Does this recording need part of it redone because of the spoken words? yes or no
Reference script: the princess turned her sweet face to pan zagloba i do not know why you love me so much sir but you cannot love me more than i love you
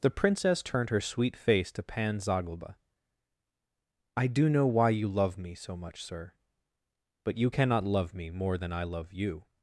yes